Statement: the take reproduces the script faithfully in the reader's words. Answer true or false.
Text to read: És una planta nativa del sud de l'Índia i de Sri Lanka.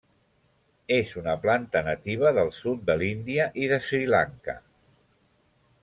true